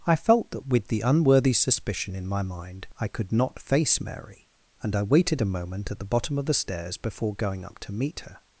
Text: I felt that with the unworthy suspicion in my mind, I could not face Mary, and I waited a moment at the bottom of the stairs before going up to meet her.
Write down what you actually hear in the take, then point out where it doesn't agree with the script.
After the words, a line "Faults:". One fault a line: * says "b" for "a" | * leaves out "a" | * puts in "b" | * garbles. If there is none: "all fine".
I felt that with the unworthy suspicion in my mind, I could not face Mary, and I waited a moment at the bottom of the stairs before going up to meet her.
Faults:
all fine